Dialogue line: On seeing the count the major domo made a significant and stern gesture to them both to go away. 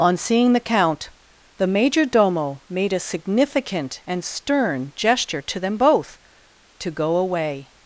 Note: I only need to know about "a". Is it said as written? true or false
true